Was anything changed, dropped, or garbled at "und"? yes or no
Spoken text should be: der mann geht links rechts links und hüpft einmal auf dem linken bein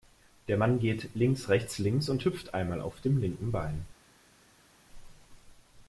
no